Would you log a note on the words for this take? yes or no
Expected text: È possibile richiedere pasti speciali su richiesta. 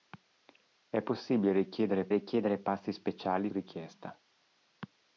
yes